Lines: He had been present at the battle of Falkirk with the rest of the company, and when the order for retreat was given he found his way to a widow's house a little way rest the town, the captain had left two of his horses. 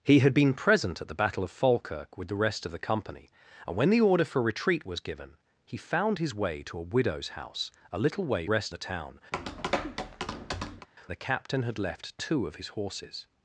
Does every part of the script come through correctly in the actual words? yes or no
yes